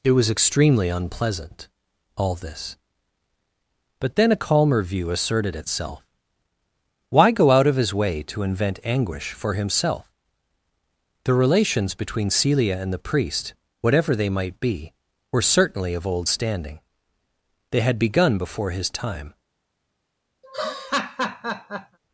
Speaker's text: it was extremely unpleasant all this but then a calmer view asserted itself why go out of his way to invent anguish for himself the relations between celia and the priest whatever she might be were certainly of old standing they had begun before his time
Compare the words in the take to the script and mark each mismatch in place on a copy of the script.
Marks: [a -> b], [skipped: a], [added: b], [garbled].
it was extremely unpleasant all this but then a calmer view asserted itself why go out of his way to invent anguish for himself the relations between celia and the priest whatever [she -> they] might be were certainly of old standing they had begun before his time